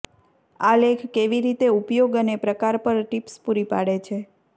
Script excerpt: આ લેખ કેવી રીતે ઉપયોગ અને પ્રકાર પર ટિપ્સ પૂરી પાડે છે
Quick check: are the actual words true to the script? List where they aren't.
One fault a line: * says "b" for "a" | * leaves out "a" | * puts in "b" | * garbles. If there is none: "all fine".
all fine